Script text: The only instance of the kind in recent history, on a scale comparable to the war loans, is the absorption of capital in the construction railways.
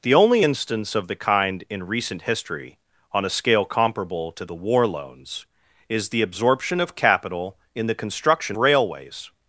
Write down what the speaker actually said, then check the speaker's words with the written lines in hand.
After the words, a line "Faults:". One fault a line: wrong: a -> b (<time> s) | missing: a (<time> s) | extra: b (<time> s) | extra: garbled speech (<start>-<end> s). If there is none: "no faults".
The only instance of the kind in recent history, on a scale comparable to the war loans, is the absorption of capital in the construction railways.
Faults:
no faults